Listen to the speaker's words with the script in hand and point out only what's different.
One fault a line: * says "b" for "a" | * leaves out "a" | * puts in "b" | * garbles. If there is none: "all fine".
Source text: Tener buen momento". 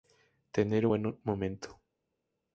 all fine